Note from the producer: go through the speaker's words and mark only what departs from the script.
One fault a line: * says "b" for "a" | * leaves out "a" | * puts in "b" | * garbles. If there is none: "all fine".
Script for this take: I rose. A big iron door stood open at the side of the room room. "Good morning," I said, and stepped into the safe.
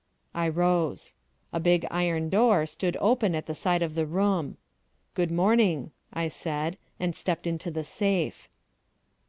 * leaves out "room"